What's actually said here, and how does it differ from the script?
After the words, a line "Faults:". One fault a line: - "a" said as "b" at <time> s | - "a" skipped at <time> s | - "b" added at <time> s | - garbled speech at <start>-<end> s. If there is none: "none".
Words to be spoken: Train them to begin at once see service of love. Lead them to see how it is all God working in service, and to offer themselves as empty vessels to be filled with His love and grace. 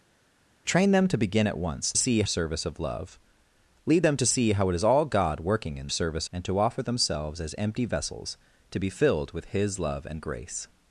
Train them to begin at once see service of love. Lead them to see how it is all God working in service, and to offer themselves as empty vessels to be filled with His love and grace.
Faults:
none